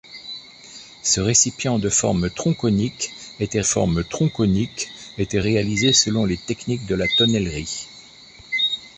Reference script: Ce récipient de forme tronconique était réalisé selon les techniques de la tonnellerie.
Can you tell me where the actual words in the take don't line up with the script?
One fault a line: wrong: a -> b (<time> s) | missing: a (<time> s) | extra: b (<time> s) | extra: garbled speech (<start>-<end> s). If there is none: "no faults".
extra: forme tronconique était (3.6 s)